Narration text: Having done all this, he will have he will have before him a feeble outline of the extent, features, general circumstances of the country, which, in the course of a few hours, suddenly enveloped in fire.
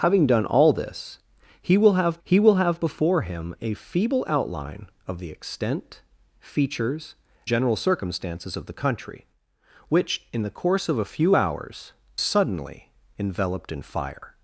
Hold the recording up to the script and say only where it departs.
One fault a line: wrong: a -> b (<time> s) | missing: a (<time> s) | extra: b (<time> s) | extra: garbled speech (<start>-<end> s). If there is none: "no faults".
no faults